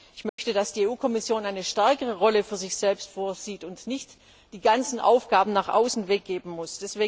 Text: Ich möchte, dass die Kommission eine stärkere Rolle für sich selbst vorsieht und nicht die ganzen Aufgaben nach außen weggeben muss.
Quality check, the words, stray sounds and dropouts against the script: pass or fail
fail